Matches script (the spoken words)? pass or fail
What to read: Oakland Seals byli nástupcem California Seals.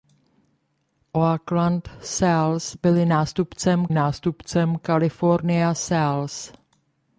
fail